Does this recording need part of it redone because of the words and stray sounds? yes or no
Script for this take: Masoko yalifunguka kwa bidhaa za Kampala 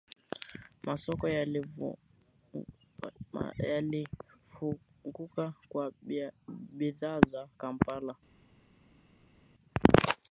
no